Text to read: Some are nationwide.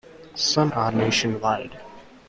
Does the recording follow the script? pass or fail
pass